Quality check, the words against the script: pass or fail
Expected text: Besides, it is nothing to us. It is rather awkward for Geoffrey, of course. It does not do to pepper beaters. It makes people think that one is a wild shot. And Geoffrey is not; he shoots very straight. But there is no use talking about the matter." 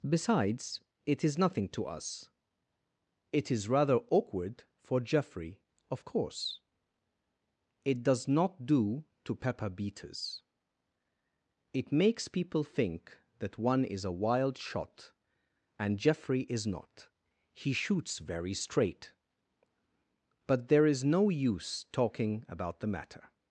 pass